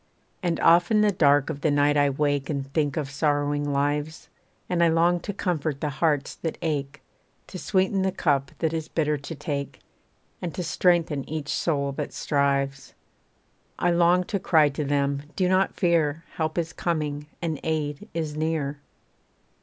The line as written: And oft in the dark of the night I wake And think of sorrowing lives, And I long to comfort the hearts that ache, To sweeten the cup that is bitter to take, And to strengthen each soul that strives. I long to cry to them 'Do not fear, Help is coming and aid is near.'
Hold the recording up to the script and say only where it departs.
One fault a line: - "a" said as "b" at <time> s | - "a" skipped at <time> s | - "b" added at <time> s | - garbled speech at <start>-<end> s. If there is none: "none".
none